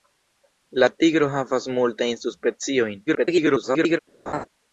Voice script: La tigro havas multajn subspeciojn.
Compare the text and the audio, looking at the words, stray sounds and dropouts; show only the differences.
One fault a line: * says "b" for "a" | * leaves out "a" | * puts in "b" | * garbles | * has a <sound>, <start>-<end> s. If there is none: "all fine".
* garbles
* has a laugh, 4.3-4.5 s